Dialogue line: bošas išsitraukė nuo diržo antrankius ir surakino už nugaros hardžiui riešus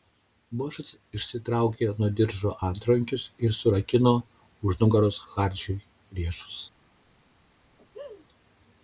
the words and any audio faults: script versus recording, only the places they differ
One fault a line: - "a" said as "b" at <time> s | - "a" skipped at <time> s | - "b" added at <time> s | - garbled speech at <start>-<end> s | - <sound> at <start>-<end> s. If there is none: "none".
- laugh at 7.8-8.3 s